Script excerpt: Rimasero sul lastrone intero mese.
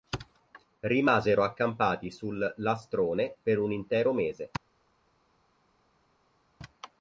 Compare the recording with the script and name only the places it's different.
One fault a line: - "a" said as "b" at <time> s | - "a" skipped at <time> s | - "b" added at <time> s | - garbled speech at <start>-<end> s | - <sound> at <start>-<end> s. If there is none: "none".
- "accampati" added at 1.4 s
- "per un" added at 3.4 s